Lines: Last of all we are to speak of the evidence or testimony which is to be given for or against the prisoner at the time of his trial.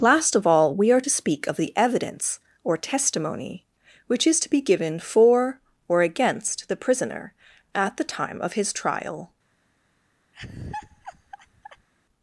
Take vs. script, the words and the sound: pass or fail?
fail